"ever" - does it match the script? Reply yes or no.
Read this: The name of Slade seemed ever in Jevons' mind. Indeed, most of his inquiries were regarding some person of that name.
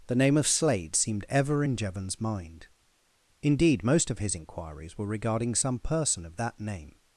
yes